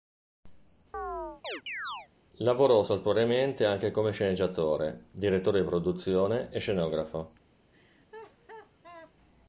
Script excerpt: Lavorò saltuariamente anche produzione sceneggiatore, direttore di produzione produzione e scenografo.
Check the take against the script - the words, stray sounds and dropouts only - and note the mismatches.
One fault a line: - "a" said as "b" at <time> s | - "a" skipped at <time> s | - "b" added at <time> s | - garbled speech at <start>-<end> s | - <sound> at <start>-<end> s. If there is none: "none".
- chirp at 0.9-2.1 s
- "produzione" said as "come" at 3.9 s
- "produzione" skipped at 6.5 s
- laugh at 7.7-9.1 s